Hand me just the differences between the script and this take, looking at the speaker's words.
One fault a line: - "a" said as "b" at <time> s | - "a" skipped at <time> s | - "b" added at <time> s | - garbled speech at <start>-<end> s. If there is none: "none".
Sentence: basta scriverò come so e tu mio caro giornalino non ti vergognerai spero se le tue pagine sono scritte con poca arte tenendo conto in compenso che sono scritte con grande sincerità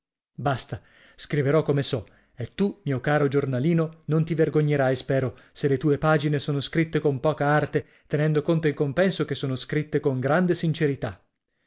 none